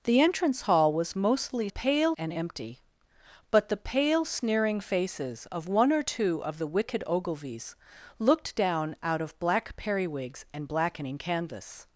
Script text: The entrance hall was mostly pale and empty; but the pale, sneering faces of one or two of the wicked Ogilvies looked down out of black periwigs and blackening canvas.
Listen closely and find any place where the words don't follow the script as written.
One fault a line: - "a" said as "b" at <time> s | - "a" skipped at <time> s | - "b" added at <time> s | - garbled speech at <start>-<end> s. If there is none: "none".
none